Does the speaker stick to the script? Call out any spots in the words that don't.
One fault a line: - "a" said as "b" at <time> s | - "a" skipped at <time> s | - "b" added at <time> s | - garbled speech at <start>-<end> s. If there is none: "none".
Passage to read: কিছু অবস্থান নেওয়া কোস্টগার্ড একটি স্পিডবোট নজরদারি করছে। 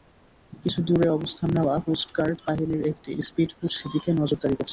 - "দূরে" added at 0.9 s
- "বাহিনীর" added at 2.5 s
- "সেদিকে" added at 3.8 s